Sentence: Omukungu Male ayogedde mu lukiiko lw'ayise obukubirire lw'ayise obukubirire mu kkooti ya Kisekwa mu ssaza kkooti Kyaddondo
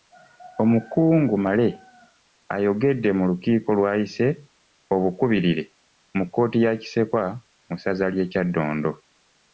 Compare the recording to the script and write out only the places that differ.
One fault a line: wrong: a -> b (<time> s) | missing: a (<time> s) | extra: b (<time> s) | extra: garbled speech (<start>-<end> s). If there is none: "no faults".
missing: lw'ayise obukubirire (5.6 s)
wrong: kkooti -> ly'e (8.1 s)